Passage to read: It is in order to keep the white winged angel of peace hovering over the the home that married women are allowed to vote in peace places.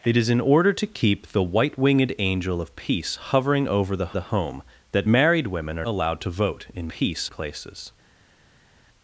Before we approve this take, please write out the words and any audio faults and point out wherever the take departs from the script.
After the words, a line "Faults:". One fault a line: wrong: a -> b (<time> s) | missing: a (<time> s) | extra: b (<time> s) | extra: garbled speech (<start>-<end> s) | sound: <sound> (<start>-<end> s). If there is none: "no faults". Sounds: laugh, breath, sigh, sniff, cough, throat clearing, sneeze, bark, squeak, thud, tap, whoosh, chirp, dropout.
It is in order to keep the white winged angel of peace hovering over the the home that married women are allowed to vote in peace places.
Faults:
no faults